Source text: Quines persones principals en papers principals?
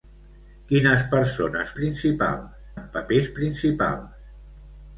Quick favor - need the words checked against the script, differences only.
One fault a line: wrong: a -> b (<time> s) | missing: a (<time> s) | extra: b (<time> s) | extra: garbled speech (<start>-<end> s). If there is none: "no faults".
no faults